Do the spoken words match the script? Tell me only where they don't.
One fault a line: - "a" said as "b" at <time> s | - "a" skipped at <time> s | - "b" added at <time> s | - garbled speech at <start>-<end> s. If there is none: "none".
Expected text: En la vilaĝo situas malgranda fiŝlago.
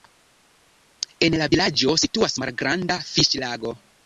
none